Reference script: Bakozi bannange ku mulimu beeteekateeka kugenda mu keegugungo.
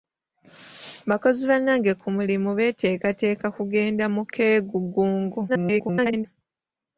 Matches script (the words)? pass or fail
fail